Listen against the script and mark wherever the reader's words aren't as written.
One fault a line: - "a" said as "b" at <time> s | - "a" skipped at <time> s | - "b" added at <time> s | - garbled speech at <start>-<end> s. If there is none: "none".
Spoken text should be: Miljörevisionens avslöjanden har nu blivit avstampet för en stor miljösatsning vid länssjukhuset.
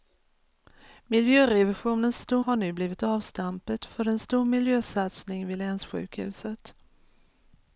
- "avslöjanden" said as "stor" at 2.2 s